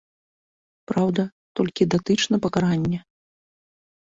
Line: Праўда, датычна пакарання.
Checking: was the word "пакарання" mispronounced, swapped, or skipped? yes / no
no